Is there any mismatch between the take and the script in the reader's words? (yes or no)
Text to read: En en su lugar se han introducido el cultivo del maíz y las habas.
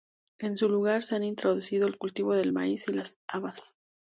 yes